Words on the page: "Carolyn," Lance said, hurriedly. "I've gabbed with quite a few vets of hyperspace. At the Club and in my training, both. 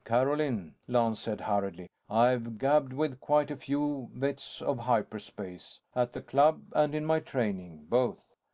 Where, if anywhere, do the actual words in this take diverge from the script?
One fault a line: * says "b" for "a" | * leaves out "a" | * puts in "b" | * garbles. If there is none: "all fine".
all fine